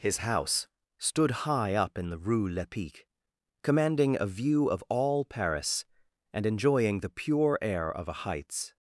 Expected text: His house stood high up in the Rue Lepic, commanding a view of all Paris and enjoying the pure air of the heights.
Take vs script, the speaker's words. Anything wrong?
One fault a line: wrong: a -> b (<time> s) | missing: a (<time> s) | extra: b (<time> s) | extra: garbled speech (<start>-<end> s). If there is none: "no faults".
wrong: the -> a (8.1 s)